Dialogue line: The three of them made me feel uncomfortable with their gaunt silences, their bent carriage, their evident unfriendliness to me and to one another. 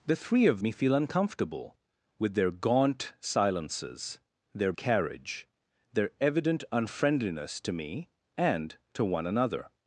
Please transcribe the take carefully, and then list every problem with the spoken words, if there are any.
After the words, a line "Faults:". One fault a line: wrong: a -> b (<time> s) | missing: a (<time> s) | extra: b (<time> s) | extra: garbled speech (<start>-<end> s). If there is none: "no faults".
The three of me feel uncomfortable with their gaunt silences, their carriage, their evident unfriendliness to me and to one another.
Faults:
missing: them made (0.6 s)
missing: bent (4.7 s)